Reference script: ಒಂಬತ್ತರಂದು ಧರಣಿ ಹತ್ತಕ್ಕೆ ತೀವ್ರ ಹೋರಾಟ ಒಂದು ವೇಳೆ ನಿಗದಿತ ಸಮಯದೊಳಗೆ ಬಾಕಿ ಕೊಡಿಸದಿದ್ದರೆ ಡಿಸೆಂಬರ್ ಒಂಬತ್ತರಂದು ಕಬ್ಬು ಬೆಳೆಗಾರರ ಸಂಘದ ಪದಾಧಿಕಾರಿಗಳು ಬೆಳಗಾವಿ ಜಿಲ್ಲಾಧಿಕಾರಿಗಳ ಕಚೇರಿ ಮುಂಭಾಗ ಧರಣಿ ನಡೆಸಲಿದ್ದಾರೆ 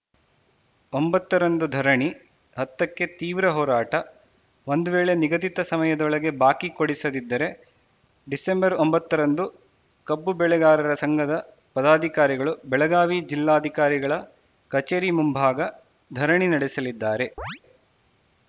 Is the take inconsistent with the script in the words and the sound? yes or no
yes